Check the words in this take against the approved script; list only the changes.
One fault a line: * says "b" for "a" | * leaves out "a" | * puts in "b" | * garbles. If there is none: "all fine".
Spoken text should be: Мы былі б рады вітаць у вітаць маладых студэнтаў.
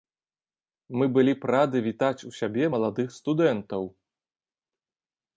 * says "сябе" for "вітаць"